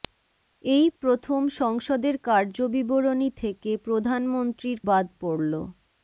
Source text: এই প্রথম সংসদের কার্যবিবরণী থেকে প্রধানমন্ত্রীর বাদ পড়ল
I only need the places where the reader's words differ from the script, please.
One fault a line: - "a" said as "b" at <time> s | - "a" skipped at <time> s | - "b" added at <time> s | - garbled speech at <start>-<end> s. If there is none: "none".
none